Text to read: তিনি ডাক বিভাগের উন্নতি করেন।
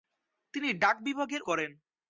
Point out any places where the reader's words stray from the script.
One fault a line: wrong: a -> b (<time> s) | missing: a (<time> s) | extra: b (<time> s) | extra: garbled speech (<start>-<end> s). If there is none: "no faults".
missing: উন্নতি (1.4 s)